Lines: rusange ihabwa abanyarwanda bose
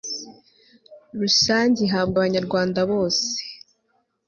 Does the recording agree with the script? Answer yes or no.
yes